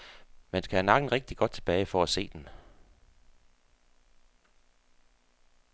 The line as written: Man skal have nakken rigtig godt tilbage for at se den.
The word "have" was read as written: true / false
true